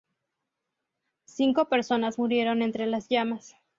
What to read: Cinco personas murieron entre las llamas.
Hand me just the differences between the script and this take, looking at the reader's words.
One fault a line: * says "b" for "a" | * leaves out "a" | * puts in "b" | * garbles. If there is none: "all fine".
all fine